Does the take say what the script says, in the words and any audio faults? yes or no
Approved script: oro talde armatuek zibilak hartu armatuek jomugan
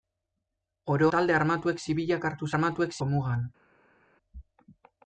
yes